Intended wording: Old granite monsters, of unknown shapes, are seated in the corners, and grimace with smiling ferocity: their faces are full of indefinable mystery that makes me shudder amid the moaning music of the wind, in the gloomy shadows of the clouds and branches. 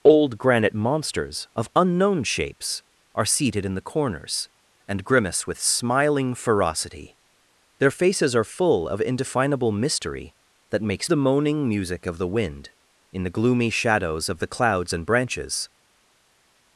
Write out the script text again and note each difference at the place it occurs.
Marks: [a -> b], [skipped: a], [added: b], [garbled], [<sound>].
Old granite monsters, of unknown shapes, are seated in the corners, and grimace with smiling ferocity: their faces are full of indefinable mystery that makes [skipped: me shudder amid] the moaning music of the wind, in the gloomy shadows of the clouds and branches.